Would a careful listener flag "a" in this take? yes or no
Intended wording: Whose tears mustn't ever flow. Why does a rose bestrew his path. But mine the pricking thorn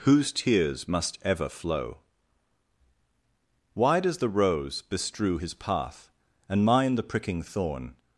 yes